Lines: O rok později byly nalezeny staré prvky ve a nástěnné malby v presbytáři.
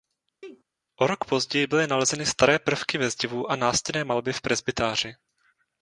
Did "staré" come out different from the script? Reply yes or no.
no